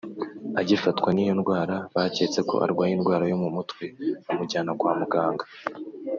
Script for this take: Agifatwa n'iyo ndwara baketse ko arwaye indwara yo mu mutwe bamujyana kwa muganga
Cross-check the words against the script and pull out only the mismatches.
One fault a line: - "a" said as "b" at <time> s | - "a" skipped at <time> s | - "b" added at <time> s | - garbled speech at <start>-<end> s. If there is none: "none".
none